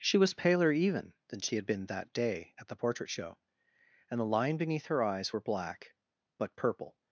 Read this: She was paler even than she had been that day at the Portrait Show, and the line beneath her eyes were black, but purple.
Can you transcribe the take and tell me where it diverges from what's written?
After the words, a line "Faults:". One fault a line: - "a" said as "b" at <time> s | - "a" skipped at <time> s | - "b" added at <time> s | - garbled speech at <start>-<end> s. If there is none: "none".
She was paler even than she had been that day at the Portrait Show, and the line beneath her eyes were black, but purple.
Faults:
none